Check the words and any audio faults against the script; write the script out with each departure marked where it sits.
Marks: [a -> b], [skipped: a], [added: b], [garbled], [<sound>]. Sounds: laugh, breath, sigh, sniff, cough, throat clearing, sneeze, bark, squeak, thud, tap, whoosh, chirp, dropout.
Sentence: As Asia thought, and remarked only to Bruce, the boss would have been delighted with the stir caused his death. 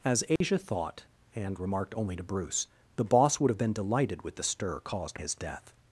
As Asia [dropout] thought, and remarked only to Bruce, the boss would have been delighted with the stir caused his death.